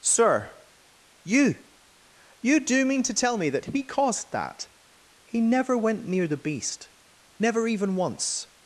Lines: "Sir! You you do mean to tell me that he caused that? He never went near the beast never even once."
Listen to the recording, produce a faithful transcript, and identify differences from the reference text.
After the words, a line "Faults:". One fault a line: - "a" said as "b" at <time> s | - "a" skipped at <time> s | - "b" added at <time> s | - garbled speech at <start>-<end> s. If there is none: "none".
"Sir! You you do mean to tell me that he caused that? He never went near the beast never even once."
Faults:
none